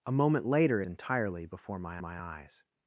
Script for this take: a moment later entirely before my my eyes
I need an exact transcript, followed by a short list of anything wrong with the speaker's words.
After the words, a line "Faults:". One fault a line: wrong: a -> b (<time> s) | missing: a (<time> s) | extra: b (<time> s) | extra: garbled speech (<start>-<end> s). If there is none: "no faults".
a moment later entirely before my my eyes
Faults:
no faults